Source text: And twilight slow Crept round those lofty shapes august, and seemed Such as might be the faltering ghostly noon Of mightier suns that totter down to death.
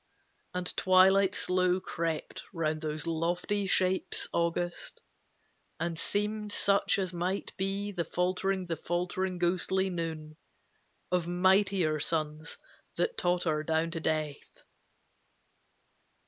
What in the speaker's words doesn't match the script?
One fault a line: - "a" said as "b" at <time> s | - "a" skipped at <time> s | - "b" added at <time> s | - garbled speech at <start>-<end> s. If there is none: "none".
- "the faltering" added at 8.6 s